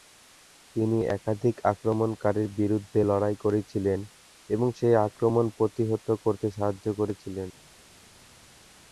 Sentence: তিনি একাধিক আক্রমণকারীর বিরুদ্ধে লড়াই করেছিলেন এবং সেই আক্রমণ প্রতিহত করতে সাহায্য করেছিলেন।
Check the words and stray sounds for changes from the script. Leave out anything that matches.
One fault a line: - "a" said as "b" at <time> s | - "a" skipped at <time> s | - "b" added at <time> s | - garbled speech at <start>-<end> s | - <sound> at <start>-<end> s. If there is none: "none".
none